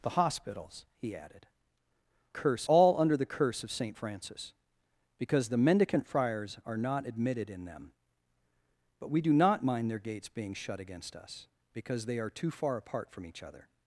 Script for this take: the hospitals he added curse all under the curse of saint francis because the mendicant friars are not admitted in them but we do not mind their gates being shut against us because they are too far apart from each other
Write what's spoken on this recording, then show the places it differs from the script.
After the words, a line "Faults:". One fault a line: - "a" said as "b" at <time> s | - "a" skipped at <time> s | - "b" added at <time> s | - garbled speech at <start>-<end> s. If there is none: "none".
the hospitals he added curse all under the curse of saint francis because the mendicant friars are not admitted in them but we do not mind their gates being shut against us because they are too far apart from each other
Faults:
none